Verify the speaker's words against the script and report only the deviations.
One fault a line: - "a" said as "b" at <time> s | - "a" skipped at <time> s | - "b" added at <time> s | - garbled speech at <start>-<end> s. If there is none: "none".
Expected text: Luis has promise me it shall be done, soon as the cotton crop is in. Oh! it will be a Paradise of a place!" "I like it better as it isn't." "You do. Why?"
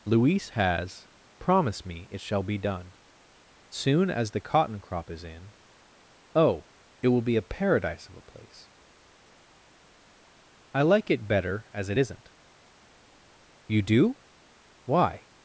none